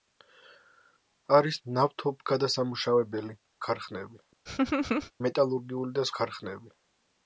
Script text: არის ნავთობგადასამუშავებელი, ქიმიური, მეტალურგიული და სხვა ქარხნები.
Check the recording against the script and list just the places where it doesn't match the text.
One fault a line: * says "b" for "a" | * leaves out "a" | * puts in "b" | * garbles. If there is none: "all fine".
* says "ქარხნები" for "ქიმიური"
* leaves out "სხვა"